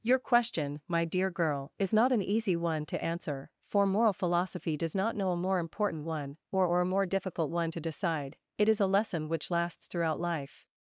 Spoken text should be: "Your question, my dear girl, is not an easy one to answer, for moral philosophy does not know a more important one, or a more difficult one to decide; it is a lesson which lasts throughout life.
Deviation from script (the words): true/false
true